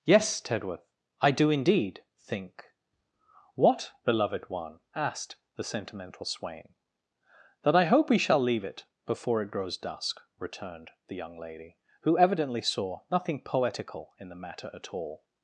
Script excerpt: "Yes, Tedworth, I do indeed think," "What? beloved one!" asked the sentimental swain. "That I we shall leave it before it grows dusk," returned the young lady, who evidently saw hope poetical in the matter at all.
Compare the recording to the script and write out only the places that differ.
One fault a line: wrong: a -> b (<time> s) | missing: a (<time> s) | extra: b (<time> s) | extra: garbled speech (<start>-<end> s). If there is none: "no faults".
extra: hope (7.8 s)
wrong: hope -> nothing (13.1 s)